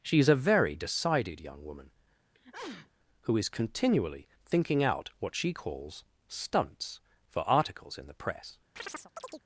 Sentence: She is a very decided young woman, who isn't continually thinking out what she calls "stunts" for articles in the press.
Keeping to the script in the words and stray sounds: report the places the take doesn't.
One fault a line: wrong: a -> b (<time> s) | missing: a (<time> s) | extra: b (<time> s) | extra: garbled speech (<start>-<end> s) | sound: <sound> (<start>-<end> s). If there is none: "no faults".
sound: sneeze (2.3-2.9 s)
wrong: isn't -> is (3.4 s)
sound: chirp (8.8-9.4 s)